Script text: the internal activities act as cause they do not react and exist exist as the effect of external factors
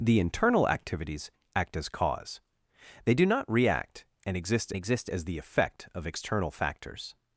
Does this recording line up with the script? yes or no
yes